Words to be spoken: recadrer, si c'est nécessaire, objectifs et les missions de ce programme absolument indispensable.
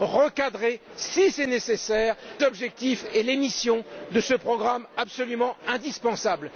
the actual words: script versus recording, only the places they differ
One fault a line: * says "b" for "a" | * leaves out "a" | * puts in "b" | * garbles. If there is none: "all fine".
all fine